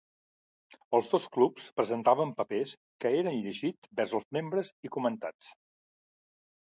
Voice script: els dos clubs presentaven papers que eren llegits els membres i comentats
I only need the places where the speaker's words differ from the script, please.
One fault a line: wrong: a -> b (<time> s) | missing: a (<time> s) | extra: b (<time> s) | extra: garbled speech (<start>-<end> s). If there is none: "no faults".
extra: vers (4.0 s)